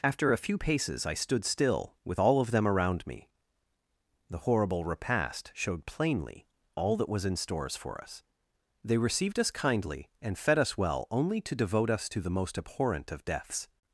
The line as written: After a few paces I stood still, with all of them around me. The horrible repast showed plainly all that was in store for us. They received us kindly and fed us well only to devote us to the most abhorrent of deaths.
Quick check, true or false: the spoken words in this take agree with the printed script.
false